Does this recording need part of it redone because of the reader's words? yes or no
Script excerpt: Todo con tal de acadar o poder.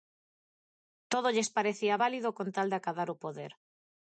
yes